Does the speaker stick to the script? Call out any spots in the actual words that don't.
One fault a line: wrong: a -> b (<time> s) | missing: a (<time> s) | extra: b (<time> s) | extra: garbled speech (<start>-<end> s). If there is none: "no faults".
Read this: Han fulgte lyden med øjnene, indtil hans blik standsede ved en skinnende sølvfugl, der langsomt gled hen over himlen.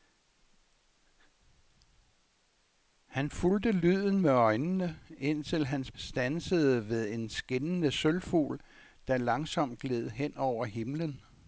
missing: blik (5.9 s)